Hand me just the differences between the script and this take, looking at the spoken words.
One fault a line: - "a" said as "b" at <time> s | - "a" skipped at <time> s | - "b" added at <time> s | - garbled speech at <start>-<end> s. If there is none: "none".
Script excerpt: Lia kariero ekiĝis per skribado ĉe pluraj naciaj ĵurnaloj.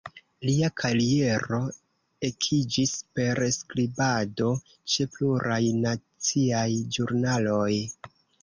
none